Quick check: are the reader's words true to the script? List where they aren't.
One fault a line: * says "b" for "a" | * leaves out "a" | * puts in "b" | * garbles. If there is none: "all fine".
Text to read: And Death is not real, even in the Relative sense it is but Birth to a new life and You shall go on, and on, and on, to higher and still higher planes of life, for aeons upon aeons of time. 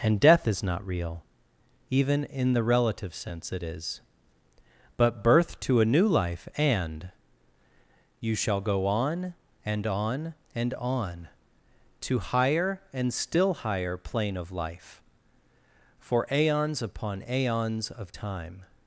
* says "plane" for "planes"